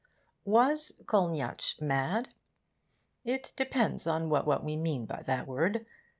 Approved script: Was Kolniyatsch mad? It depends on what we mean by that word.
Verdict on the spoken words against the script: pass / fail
fail